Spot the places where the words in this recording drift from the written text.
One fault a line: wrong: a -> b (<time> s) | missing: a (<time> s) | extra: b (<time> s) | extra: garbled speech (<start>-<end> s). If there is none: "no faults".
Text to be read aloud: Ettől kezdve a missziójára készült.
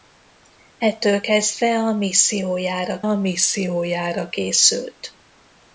extra: a missziójára (3.0 s)